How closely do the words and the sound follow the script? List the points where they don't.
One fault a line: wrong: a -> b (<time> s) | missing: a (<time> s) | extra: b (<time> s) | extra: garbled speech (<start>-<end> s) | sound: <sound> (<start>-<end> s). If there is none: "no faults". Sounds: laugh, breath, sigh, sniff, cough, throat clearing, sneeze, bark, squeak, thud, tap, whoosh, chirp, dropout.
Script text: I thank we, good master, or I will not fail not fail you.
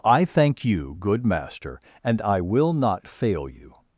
wrong: we -> you (0.7 s)
wrong: or -> and (2.0 s)
missing: not fail (3.5 s)